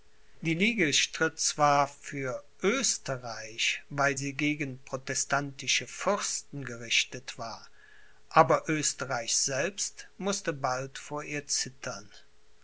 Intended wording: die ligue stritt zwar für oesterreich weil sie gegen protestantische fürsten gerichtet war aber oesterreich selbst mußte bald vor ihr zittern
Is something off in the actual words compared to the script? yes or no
no